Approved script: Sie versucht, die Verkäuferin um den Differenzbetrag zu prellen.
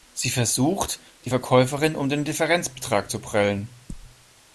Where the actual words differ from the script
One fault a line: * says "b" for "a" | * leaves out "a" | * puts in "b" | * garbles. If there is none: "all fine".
all fine